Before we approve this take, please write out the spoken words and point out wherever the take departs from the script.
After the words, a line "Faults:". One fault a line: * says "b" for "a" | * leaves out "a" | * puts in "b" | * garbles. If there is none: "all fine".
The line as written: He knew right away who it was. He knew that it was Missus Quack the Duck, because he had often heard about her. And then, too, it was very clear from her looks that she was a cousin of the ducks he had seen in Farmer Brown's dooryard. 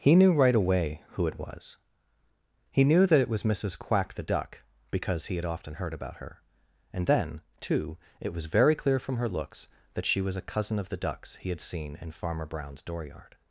He knew right away who it was. He knew that it was Missus Quack the Duck, because he had often heard about her. And then, too, it was very clear from her looks that she was a cousin of the ducks he had seen in Farmer Brown's dooryard.
Faults:
all fine